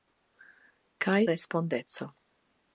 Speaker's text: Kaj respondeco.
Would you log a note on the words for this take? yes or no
no